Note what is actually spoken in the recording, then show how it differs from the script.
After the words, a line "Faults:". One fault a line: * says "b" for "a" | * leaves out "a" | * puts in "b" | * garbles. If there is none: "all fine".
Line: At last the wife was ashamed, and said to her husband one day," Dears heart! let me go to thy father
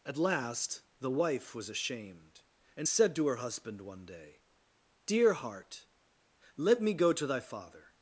At last the wife was ashamed, and said to her husband one day," Dear heart! let me go to thy father
Faults:
* says "Dear" for "Dears"